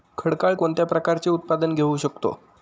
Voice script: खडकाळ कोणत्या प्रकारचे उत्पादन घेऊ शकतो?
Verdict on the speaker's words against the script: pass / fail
pass